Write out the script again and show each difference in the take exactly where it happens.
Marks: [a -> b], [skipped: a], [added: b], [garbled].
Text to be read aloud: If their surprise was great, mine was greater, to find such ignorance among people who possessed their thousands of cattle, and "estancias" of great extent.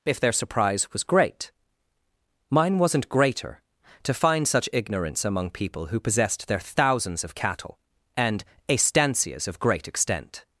If their surprise was great, mine [was -> wasn't] greater, to find such ignorance among people who possessed their thousands of cattle, and "estancias" of great extent.